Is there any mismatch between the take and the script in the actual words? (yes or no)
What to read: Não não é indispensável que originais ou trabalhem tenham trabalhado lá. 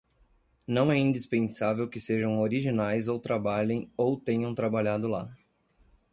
yes